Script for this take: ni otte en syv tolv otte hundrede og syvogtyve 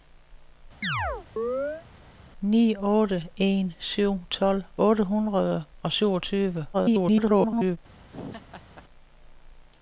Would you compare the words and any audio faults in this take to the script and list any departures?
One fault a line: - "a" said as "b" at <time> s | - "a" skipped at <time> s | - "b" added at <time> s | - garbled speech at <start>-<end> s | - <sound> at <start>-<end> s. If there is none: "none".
- chirp at 0.8-1.9 s
- garbled speech at 6.7-7.8 s
- laugh at 8.1-8.8 s